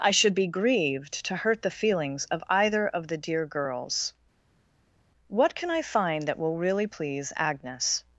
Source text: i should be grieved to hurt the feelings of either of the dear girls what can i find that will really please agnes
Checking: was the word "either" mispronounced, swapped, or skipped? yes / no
no